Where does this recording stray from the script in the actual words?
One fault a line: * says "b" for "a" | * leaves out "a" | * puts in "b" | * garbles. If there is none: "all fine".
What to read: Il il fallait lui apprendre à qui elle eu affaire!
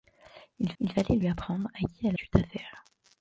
all fine